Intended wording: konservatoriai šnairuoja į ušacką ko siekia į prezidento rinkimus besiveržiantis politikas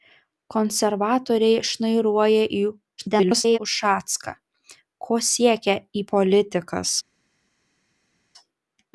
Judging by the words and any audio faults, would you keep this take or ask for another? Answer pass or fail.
fail